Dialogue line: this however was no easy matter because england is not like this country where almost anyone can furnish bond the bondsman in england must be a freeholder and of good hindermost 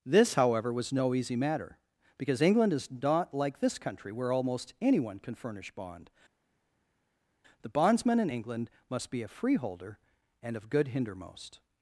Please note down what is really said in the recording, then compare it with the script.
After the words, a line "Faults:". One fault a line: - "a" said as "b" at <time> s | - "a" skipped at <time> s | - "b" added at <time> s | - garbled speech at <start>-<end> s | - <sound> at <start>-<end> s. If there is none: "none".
this however was no easy matter because england is not like this country where almost anyone can furnish bond the bondsman in england must be a freeholder and of good hindermost
Faults:
none